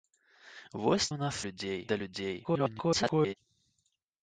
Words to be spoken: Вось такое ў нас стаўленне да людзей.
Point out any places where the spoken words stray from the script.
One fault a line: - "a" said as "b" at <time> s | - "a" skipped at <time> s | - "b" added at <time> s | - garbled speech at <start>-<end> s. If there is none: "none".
- "такое" skipped at 1.1 s
- "стаўленне" said as "людзей" at 1.5 s
- garbled speech at 2.4-3.3 s